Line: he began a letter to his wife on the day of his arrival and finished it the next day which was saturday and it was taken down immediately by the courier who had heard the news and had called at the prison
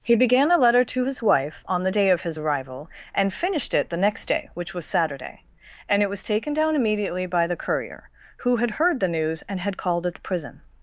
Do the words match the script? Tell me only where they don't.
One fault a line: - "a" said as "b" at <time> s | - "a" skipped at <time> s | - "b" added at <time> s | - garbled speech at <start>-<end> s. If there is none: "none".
none